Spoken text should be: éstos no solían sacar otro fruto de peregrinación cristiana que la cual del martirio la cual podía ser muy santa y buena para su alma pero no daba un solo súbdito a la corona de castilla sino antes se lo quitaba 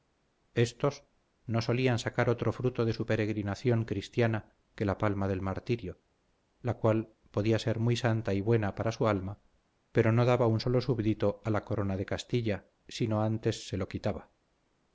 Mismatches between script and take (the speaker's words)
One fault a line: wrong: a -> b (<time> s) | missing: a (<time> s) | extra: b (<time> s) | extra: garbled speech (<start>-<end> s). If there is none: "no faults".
extra: su (2.9 s)
wrong: cual -> palma (5.0 s)